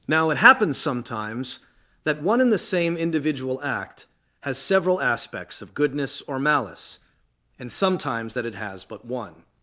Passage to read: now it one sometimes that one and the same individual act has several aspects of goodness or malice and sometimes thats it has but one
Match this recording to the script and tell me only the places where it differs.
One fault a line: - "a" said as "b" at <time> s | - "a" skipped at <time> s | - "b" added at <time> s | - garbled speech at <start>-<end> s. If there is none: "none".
- "one" said as "happens" at 0.4 s
- "thats" said as "that" at 8.3 s